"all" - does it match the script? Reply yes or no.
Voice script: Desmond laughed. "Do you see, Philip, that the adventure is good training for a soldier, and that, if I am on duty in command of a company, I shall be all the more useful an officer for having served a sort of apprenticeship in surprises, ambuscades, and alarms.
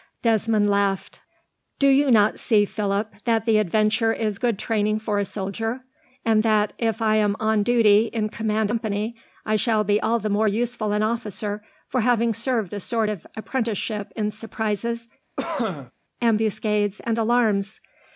yes